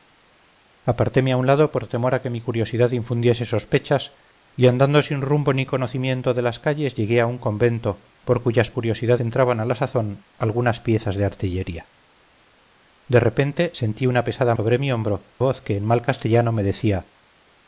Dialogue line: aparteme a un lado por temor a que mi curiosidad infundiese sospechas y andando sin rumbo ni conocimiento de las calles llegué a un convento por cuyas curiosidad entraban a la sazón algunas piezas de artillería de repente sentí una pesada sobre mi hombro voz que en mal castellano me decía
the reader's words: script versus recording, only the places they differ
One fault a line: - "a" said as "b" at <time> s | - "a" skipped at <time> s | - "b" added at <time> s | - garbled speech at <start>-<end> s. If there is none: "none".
none